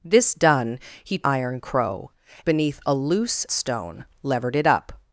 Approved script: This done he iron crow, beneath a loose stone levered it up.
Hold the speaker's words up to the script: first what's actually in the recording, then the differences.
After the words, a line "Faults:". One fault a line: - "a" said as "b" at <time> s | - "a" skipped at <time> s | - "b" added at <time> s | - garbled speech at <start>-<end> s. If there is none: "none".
This done he iron crow, beneath a loose stone levered it up.
Faults:
none